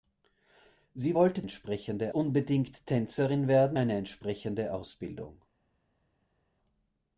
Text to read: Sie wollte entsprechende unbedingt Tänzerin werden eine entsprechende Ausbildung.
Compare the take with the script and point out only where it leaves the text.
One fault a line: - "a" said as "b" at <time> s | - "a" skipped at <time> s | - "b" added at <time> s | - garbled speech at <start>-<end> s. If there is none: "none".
none